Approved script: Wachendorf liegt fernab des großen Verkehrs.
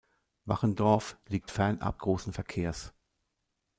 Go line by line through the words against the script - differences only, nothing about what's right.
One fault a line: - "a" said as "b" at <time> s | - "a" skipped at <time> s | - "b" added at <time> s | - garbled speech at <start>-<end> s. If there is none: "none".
- "des" skipped at 2.0 s